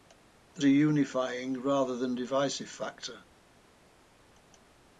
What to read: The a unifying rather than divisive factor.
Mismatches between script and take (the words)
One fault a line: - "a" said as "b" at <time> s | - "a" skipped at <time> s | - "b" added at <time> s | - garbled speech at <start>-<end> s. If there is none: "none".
none